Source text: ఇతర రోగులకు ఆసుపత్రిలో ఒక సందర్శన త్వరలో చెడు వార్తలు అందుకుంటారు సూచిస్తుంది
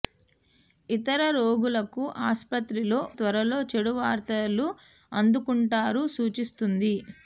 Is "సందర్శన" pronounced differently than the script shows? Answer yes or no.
yes